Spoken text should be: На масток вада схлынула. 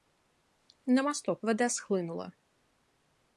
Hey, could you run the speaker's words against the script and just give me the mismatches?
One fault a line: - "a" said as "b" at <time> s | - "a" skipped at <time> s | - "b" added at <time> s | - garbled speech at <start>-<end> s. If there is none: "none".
none